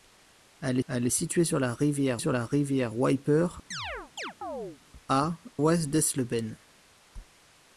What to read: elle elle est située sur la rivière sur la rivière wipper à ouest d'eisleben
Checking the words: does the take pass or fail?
pass